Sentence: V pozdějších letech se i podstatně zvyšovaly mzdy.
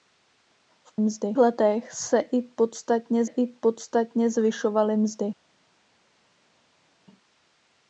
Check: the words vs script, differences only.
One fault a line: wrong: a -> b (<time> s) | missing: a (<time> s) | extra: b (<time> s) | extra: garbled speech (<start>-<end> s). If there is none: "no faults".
wrong: pozdějších -> mzdy (1.0 s)
extra: i podstatně (3.2 s)